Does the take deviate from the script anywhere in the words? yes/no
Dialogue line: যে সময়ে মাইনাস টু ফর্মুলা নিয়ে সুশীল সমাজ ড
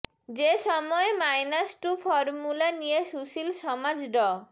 no